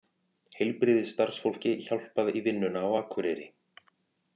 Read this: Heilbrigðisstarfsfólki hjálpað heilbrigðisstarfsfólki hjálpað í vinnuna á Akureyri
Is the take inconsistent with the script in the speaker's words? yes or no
yes